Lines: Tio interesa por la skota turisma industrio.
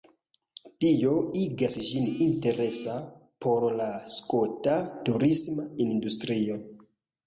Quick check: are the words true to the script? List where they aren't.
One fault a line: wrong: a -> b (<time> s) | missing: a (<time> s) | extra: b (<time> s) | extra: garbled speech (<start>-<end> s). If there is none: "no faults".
extra: igas ĝin (1.4 s)